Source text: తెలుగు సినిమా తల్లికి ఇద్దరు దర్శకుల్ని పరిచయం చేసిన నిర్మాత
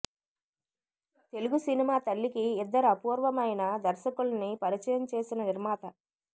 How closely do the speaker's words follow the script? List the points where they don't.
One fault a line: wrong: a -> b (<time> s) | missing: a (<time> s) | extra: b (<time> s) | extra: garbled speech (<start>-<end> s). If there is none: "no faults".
extra: అపూర్వమైన (2.9 s)